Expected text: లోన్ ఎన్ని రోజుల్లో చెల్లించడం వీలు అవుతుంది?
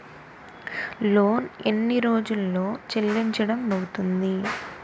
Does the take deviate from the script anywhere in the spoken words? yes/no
yes